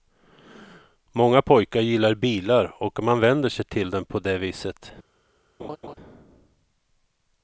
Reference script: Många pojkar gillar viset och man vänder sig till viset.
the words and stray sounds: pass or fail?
fail